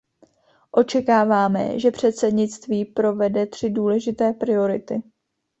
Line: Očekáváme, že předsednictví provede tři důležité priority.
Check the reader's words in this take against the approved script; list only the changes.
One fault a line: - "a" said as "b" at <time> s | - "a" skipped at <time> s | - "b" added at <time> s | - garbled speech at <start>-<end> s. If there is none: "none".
none